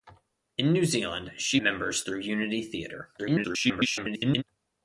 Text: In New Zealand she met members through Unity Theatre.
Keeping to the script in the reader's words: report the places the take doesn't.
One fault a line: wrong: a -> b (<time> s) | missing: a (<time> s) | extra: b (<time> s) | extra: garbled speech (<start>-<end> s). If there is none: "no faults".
missing: met (1.6 s)
extra: garbled speech (3.2-4.4 s)